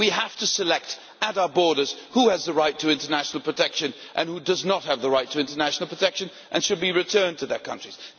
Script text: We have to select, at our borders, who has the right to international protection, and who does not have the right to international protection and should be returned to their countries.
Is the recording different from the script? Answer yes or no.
no